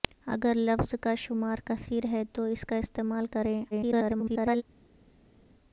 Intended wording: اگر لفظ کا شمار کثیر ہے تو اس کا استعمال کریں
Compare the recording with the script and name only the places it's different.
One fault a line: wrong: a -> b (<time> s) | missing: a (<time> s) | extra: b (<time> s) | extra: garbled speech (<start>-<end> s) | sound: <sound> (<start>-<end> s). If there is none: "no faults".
extra: garbled speech (3.7-4.6 s)